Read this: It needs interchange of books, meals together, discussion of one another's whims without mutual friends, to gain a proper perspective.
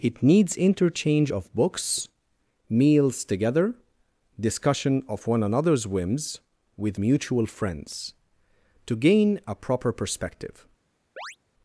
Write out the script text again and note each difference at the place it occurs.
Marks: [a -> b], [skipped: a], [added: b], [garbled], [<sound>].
It needs interchange of books, meals together, discussion of one another's whims [without -> with] mutual friends, to gain a proper perspective. [chirp]